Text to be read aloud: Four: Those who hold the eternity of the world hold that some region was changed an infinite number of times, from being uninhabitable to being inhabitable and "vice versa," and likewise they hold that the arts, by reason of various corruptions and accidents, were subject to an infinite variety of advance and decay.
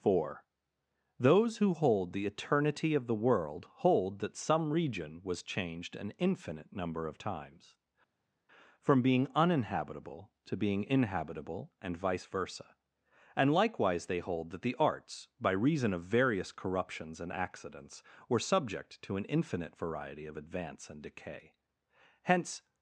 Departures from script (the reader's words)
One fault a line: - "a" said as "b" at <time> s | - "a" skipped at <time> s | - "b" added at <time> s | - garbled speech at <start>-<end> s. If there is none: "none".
- "Hence" added at 22.2 s